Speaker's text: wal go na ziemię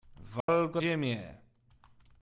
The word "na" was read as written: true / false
false